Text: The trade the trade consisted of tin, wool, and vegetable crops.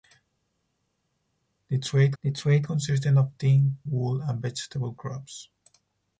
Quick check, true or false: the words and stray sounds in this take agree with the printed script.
true